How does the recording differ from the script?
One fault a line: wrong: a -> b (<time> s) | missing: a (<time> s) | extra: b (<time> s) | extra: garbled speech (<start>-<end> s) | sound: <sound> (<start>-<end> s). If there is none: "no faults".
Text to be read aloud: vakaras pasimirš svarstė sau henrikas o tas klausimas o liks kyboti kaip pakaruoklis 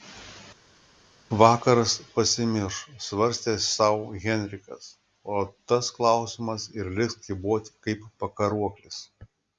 wrong: o -> ir (6.8 s)